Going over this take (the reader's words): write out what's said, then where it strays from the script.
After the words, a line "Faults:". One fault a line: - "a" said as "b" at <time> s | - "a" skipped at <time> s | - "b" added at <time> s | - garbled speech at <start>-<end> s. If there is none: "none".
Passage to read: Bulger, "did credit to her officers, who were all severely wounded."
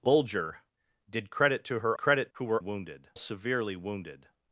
Bulger, "did credit to her credit, who were wounded severely wounded."
Faults:
- "officers" said as "credit" at 2.0 s
- "all" said as "wounded" at 2.6 s